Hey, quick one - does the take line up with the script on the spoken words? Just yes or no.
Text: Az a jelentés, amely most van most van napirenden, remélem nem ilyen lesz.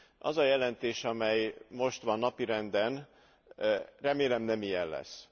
no